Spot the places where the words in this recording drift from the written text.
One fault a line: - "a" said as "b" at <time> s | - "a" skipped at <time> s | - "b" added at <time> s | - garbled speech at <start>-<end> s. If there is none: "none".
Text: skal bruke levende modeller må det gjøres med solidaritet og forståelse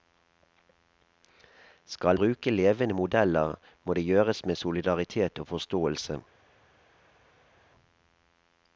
none